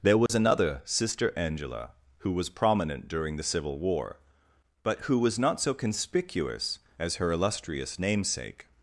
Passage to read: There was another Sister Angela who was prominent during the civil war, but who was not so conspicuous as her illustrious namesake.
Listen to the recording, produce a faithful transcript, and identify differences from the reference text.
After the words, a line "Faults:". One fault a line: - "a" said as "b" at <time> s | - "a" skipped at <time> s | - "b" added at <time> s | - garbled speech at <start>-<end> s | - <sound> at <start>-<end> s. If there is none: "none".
There was another Sister Angela who was prominent during the civil war, but who was not so conspicuous as her illustrious namesake.
Faults:
- dropout at 0.3-0.3 s